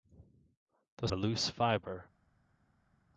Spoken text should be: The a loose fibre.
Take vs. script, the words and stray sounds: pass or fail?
pass